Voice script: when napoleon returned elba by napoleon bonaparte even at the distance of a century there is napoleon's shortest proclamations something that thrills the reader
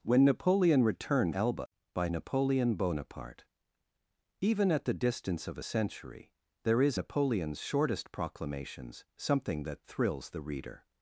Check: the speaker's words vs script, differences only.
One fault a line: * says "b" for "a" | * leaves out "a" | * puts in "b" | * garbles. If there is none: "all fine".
all fine